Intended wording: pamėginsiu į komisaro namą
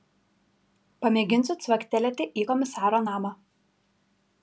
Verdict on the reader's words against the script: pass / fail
fail